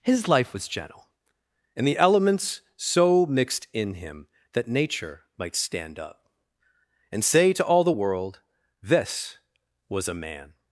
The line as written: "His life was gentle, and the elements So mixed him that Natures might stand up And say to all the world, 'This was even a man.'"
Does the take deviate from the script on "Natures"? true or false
true